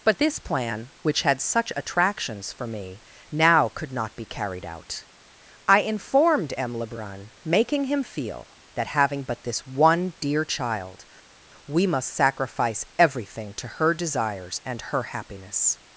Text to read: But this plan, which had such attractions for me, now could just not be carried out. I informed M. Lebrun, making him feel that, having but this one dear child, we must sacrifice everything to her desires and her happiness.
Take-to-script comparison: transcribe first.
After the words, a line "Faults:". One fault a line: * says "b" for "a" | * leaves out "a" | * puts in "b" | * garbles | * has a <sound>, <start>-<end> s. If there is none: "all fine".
But this plan, which had such attractions for me, now could not be carried out. I informed M. Lebrun, making him feel that, having but this one dear child, we must sacrifice everything to her desires and her happiness.
Faults:
* leaves out "just"